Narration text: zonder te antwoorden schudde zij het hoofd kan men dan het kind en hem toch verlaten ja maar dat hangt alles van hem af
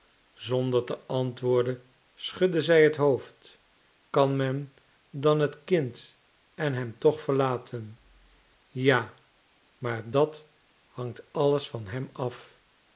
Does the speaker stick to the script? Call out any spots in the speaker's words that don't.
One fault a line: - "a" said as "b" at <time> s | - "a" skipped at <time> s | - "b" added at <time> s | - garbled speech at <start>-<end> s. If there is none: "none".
none